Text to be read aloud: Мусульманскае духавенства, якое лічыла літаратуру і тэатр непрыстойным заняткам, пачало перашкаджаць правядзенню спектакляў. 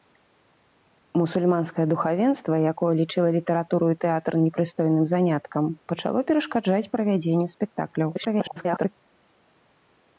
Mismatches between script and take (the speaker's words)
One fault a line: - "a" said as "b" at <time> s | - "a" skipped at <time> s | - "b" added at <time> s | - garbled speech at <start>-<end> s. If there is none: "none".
- garbled speech at 8.1-9.0 s